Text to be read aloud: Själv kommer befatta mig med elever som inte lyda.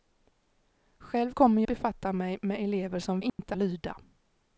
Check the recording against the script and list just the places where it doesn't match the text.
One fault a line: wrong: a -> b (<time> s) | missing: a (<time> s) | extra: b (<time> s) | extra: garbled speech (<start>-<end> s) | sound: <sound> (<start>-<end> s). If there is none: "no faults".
sound: dropout (3.3-3.4 s)